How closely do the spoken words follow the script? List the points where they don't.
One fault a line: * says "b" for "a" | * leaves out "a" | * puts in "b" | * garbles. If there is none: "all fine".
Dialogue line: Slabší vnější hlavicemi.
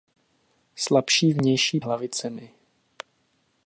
all fine